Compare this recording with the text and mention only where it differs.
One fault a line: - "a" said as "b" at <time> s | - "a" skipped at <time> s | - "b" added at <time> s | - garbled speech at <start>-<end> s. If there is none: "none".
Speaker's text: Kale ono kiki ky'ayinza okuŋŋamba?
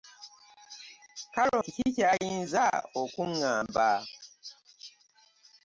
- "ono" skipped at 1.6 s